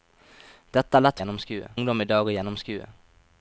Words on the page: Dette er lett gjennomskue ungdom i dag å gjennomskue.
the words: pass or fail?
pass